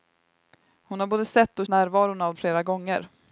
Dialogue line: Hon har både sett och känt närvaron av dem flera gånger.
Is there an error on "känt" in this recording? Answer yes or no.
yes